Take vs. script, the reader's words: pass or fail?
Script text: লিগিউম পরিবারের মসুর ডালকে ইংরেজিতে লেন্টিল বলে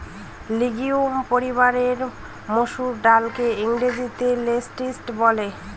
pass